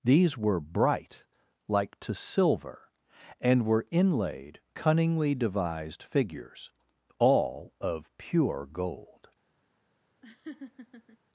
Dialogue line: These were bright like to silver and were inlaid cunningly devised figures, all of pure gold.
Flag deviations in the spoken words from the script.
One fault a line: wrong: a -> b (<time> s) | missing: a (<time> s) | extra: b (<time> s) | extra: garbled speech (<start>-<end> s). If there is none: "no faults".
no faults